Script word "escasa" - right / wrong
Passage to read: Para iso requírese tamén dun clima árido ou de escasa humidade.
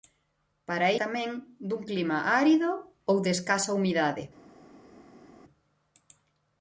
right